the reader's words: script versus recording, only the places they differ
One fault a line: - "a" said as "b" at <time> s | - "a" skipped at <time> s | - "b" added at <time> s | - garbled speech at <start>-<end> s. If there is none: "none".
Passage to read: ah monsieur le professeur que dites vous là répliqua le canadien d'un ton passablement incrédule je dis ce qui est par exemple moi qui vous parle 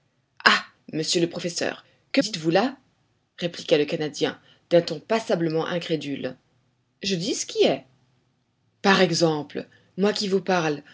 none